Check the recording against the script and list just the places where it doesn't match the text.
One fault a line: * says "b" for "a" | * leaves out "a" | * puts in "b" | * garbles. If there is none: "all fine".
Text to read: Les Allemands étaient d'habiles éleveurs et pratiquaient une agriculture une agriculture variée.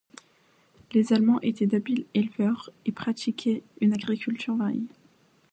* leaves out "une agriculture"